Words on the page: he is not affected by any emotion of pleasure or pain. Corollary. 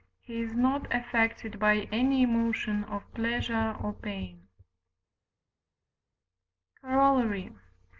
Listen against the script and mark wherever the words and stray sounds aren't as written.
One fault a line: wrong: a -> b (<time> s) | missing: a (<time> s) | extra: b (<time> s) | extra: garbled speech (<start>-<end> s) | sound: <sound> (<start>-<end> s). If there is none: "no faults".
no faults